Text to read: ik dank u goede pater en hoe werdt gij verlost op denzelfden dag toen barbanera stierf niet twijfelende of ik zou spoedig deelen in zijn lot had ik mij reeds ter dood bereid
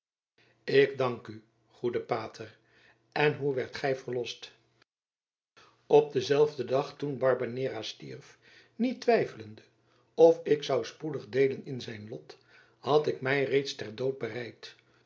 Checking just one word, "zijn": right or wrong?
right